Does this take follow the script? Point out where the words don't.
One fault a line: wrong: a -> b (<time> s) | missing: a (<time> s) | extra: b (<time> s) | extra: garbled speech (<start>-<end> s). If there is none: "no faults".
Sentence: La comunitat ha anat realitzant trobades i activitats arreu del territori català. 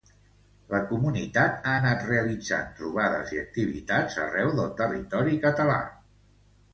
no faults